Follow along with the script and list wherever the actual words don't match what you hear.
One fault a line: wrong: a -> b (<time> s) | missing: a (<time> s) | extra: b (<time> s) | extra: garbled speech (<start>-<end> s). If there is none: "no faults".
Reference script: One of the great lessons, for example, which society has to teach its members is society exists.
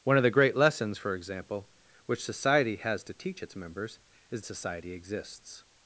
no faults